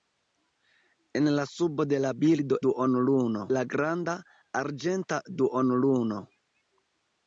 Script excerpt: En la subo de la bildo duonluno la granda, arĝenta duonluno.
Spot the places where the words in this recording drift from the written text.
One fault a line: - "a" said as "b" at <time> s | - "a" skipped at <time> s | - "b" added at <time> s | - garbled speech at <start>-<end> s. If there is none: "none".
none